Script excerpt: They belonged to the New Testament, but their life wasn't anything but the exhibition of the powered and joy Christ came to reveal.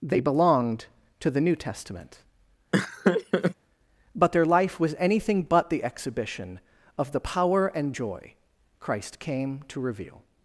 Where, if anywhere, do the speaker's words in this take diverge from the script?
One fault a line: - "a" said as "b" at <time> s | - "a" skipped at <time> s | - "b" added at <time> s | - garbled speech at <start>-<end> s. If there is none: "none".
- "wasn't" said as "was" at 4.8 s
- "powered" said as "power" at 7.2 s